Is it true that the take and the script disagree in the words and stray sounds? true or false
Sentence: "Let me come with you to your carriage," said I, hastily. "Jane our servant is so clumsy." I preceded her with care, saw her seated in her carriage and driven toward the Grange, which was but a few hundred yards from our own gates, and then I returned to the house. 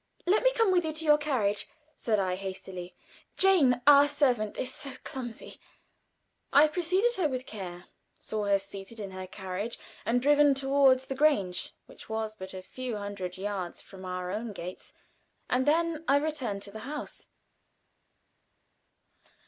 false